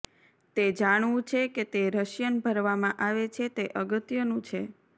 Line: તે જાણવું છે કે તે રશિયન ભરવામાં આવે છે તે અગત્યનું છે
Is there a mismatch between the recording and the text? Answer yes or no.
no